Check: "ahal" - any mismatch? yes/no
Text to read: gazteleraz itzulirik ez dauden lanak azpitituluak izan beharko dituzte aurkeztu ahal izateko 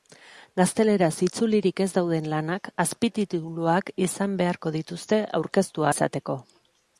yes